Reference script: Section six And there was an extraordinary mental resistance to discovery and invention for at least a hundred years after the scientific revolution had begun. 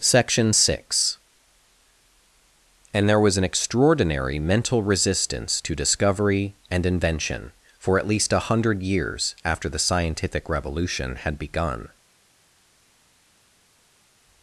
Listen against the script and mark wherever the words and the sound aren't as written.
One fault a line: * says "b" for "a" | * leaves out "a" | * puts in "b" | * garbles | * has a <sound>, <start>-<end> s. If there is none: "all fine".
all fine